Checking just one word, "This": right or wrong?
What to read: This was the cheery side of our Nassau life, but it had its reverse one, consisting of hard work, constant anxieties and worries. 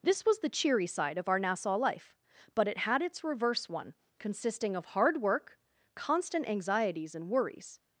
right